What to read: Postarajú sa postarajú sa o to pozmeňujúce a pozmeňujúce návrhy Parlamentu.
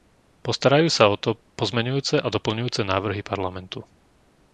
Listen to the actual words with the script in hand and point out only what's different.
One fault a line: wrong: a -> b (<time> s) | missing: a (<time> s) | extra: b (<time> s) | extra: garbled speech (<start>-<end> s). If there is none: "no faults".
missing: postarajú sa (1.1 s)
wrong: pozmeňujúce -> doplňujúce (2.2 s)